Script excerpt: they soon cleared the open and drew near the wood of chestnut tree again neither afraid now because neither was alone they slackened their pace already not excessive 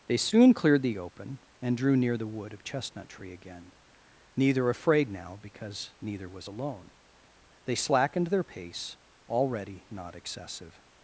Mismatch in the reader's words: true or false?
false